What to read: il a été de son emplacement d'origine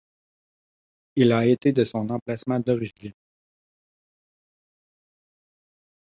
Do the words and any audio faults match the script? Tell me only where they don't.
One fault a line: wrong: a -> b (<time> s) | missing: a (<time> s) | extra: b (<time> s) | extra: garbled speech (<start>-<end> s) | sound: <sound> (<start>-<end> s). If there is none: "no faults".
no faults